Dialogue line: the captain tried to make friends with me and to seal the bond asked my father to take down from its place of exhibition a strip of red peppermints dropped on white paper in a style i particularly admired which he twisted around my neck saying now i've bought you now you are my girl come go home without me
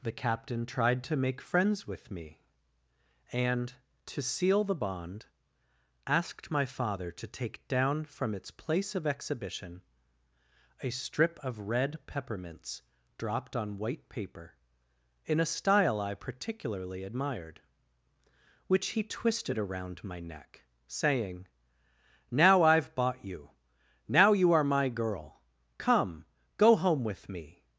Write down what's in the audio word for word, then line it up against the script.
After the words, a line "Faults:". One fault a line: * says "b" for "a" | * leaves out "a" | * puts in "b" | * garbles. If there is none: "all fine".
the captain tried to make friends with me and to seal the bond asked my father to take down from its place of exhibition a strip of red peppermints dropped on white paper in a style i particularly admired which he twisted around my neck saying now i've bought you now you are my girl come go home with me
Faults:
* says "with" for "without"